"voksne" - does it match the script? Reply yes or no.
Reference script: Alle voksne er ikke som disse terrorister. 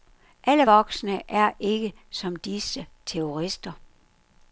yes